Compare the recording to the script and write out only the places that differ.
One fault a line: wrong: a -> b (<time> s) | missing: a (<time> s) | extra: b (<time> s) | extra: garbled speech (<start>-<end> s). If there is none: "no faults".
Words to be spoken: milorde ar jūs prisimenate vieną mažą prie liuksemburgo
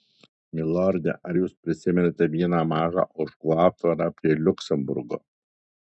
extra: ožkų aptvarą (3.2 s)